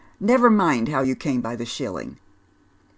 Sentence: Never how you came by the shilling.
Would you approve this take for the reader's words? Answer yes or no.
no